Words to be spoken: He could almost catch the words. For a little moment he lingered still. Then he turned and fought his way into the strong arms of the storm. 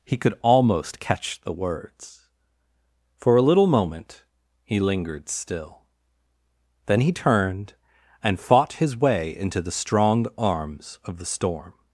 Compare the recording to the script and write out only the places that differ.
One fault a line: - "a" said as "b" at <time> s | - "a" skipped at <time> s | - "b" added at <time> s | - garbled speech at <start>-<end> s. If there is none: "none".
none